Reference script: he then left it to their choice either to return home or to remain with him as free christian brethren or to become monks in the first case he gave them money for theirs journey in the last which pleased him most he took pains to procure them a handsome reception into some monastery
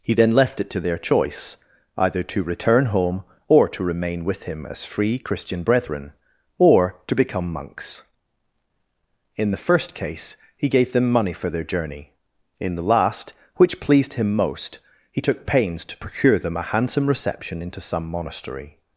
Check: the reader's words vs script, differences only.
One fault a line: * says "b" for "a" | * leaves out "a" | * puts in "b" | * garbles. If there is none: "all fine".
* says "their" for "theirs"